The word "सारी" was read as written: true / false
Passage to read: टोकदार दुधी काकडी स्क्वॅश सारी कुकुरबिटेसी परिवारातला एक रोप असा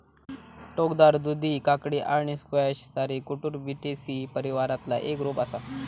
true